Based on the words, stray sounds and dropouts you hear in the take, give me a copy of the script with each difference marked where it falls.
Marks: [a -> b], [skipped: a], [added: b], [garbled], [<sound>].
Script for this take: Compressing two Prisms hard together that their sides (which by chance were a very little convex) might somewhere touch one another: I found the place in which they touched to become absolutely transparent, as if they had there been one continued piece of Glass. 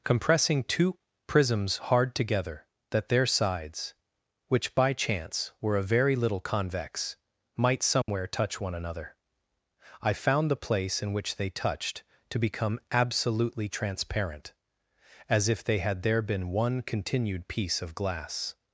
Compressing two Prisms hard together that their sides (which by chance were a very little convex) might somewhere [dropout] touch one another: I found the place in which they touched to become absolutely transparent, as if they had there been one continued piece of Glass.